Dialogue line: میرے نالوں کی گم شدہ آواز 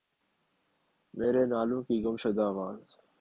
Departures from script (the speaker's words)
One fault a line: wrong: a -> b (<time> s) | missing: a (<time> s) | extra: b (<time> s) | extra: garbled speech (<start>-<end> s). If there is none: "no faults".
no faults